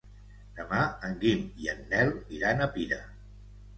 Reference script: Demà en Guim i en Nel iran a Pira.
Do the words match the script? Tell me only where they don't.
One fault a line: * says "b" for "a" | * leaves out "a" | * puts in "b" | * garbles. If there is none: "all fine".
all fine